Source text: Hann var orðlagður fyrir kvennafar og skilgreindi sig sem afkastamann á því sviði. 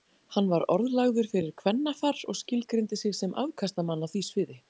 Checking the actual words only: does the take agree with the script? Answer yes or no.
yes